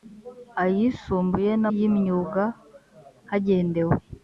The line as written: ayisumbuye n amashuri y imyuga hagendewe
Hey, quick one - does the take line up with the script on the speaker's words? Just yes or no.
no